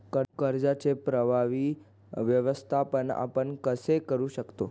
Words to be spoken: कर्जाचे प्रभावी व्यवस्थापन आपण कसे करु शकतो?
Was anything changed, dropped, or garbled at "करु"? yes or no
no